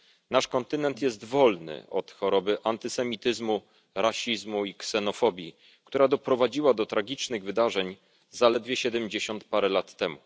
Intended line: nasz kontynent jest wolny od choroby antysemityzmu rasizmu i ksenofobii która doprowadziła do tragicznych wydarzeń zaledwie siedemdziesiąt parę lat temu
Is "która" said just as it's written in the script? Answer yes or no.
yes